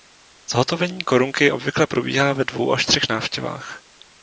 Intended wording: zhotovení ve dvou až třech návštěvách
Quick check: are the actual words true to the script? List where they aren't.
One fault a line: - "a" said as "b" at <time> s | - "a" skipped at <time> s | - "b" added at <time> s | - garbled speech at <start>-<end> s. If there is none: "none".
- "korunky obvykle probíhá" added at 1.0 s